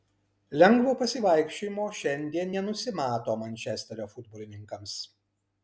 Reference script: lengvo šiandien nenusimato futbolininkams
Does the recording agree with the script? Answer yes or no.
no